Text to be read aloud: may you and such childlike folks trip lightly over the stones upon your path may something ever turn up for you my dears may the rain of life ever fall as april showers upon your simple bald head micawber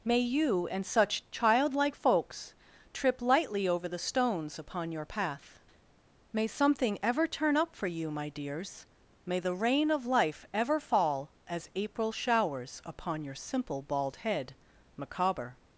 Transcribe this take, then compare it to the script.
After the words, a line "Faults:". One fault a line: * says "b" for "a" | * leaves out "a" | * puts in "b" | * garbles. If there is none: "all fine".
may you and such childlike folks trip lightly over the stones upon your path may something ever turn up for you my dears may the rain of life ever fall as april showers upon your simple bald head micawber
Faults:
all fine